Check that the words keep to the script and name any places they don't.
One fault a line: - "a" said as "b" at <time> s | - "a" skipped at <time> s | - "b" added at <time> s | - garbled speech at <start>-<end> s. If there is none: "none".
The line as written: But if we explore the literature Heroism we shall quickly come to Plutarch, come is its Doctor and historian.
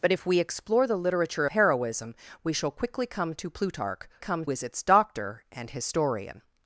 none